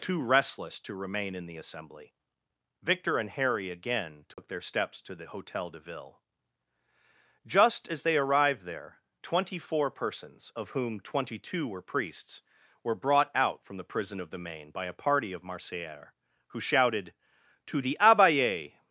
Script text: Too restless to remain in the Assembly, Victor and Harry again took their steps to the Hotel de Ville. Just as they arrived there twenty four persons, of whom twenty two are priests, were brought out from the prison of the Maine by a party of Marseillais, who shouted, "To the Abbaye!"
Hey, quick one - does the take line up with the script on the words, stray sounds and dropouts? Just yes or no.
no